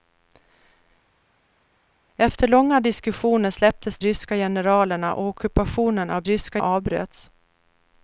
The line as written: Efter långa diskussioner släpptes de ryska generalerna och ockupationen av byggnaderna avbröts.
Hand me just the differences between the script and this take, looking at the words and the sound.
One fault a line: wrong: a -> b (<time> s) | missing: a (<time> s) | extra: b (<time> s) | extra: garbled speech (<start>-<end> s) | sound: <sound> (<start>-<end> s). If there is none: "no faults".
missing: de (4.0 s)
wrong: byggnaderna -> ryska (6.2 s)